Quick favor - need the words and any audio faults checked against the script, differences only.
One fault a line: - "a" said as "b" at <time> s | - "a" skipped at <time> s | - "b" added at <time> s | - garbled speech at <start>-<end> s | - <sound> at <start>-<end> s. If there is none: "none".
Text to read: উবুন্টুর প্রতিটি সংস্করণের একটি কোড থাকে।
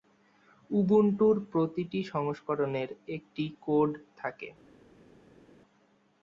none